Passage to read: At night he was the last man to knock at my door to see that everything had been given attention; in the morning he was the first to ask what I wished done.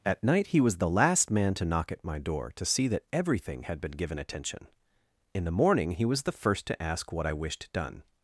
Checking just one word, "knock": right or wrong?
right